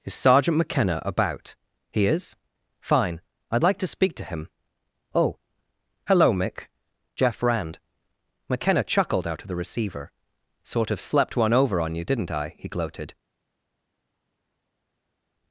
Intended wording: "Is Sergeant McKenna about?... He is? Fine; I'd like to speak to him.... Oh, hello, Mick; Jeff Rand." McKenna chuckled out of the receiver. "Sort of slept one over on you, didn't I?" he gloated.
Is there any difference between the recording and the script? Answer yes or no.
no